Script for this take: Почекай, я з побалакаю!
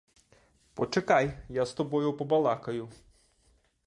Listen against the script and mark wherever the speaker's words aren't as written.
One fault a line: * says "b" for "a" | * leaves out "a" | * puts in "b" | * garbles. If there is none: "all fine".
* puts in "тобою"